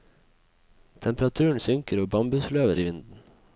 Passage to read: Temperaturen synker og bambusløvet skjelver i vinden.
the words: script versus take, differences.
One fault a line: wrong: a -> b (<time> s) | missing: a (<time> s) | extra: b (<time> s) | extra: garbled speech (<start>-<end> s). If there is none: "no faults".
missing: skjelver (2.8 s)